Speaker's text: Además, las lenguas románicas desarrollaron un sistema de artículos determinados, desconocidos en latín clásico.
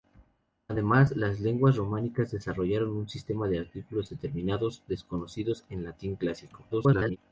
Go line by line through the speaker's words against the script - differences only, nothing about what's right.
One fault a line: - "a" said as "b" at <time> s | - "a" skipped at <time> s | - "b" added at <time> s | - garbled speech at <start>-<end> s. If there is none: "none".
- garbled speech at 6.7-7.2 s